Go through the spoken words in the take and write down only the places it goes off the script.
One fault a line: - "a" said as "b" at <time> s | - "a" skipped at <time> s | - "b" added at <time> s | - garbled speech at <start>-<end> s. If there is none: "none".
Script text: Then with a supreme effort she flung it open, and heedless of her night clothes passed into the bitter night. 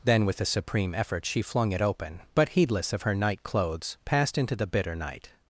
- "and" said as "but" at 2.3 s